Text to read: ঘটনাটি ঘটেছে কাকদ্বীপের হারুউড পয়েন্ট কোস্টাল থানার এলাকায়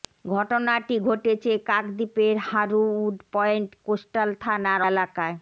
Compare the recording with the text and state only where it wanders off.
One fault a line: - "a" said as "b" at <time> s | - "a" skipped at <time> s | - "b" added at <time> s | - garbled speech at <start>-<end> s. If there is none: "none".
none